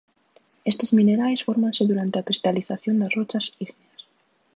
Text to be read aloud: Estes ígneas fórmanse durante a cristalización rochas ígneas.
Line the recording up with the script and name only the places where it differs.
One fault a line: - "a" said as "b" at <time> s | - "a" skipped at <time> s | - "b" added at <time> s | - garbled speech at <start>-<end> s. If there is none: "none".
- "ígneas" said as "minerais" at 1.0 s
- "das" added at 3.0 s